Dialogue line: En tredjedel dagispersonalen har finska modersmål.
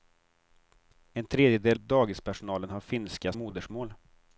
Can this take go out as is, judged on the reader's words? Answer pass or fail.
pass